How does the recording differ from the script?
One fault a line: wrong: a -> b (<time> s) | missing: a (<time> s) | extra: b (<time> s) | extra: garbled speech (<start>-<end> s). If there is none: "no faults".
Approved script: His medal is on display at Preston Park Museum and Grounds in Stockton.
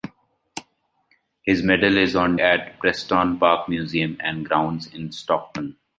missing: display (2.4 s)